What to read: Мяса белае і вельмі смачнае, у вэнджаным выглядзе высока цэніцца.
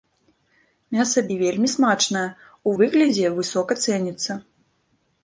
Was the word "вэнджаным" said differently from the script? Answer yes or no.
yes